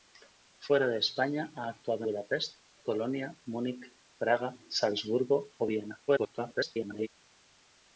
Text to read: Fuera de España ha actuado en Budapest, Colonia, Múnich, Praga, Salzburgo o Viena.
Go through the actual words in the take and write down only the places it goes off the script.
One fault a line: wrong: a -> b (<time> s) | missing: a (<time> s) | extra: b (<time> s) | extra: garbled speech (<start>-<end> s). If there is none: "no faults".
missing: en (2.0 s)
extra: garbled speech (6.1-7.1 s)